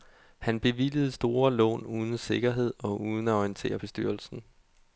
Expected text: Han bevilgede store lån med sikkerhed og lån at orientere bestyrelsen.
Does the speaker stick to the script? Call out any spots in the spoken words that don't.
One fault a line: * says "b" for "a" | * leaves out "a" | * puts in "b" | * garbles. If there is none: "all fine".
* says "uden" for "med"
* says "uden" for "lån"